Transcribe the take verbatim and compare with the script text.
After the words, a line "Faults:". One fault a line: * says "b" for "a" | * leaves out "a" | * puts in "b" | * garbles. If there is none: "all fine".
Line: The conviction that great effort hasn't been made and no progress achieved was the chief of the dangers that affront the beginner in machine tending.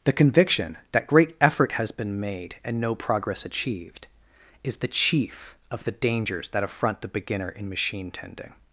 The conviction that great effort has been made and no progress achieved is the chief of the dangers that affront the beginner in machine tending.
Faults:
* says "has" for "hasn't"
* says "is" for "was"